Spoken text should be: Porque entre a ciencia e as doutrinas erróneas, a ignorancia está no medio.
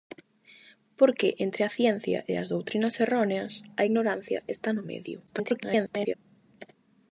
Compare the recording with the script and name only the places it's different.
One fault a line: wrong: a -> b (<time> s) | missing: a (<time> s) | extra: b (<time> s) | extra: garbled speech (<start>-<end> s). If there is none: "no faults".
extra: garbled speech (5.3-6.1 s)